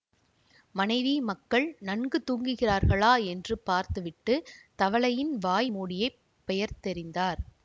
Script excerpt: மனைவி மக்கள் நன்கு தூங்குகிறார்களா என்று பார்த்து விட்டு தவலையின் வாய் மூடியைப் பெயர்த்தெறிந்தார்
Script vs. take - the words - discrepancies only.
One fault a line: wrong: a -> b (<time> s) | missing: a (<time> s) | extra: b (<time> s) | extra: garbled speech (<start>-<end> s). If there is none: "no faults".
no faults